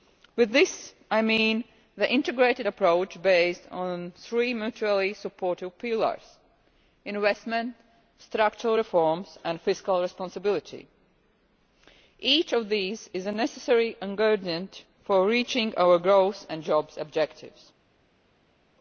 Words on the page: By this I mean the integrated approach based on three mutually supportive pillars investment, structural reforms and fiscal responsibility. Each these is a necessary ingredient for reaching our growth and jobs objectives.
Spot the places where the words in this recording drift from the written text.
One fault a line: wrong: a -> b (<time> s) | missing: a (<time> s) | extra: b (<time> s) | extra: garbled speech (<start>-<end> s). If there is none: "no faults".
extra: of (12.5 s)